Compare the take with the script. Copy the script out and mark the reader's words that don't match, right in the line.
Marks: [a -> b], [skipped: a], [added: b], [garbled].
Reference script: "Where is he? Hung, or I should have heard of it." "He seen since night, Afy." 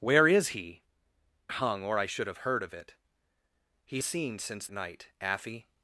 "Where is he? Hung, or I should have heard of it." "He seen since night, Afy."